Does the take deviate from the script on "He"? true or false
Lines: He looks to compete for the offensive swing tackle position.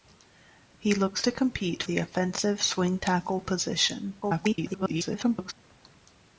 false